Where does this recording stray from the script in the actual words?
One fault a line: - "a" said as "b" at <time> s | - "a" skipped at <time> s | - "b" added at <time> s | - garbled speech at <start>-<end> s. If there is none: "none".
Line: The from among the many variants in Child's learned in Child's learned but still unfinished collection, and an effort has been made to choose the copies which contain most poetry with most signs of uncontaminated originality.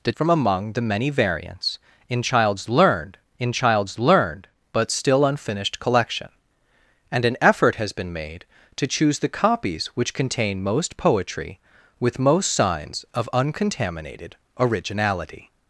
none